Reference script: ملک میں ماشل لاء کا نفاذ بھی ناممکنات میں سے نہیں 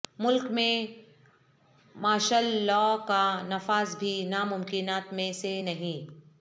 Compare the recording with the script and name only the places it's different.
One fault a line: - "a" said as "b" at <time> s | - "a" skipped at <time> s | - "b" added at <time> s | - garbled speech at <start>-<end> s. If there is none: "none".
none